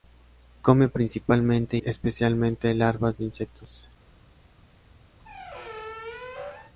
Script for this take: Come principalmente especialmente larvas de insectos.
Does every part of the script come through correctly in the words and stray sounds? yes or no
no